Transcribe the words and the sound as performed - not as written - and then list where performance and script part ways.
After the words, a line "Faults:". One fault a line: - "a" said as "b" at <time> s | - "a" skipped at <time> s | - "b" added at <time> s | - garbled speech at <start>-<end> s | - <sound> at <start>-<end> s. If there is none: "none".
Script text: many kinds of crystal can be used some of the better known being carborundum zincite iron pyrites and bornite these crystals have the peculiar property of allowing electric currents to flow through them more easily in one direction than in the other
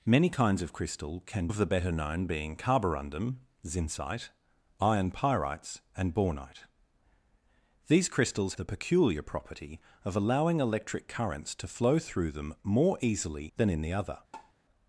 many kinds of crystal can of the better known being carborundum zincite iron pyrites and bornite these crystals the peculiar property of allowing electric currents to flow through them more easily than in the other
Faults:
- "be used some" skipped at 1.5 s
- "have" skipped at 8.5 s
- "in one direction" skipped at 13.5 s
- tap at 14.3-14.5 s